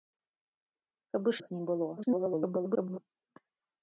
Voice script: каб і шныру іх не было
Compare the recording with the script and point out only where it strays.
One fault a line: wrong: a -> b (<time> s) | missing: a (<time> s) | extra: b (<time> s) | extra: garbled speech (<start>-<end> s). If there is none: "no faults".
missing: шныру (1.4 s)
extra: garbled speech (2.0-3.0 s)